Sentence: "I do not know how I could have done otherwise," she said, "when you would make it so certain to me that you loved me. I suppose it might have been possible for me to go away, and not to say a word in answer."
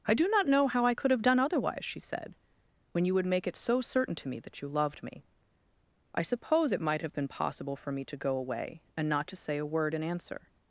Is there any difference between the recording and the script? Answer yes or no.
no